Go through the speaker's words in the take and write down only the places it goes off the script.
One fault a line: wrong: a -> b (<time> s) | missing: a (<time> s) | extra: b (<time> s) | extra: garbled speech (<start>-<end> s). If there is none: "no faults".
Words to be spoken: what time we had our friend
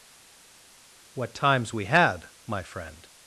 wrong: time -> times (1.4 s)
wrong: our -> my (2.5 s)